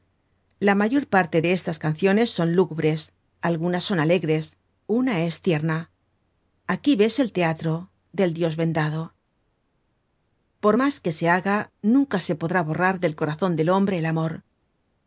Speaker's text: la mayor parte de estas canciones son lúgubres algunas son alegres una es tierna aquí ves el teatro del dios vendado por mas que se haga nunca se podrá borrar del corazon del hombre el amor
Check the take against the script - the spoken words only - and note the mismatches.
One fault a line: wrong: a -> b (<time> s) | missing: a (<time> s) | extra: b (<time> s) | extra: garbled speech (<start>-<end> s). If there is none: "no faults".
no faults